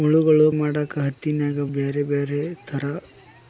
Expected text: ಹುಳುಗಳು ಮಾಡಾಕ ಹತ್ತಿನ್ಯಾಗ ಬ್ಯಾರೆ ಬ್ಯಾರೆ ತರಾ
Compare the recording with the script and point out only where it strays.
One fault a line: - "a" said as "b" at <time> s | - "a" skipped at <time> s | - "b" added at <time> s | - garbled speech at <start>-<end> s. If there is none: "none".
none